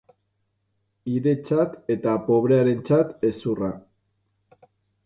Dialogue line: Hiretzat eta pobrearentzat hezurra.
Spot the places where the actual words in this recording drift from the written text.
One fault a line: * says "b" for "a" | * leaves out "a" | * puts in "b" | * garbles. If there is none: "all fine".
all fine